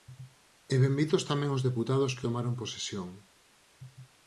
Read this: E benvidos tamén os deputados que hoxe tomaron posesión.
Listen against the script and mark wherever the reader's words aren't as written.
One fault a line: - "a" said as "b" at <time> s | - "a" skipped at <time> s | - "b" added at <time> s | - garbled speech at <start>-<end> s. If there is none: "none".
- "hoxe" skipped at 2.3 s